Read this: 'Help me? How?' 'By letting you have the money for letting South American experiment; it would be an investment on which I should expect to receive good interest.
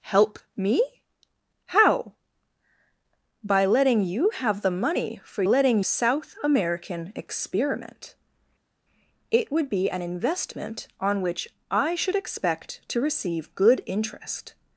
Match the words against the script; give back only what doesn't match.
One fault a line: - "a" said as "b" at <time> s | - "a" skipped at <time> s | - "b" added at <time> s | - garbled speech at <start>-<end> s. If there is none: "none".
none